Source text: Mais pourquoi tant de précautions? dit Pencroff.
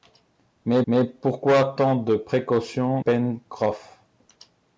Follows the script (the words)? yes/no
no